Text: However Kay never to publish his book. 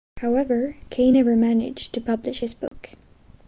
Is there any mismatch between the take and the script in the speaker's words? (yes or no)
yes